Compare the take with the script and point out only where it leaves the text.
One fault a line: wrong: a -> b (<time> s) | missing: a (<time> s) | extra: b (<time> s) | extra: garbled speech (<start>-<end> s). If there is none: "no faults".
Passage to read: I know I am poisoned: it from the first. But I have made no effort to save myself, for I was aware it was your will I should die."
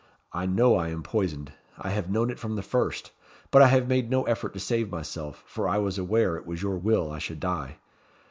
extra: I have known (1.8 s)